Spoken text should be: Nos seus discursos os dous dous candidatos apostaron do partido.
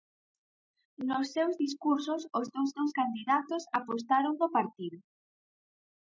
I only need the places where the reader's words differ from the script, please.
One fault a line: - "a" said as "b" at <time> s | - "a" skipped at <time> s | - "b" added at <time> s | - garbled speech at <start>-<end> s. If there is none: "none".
none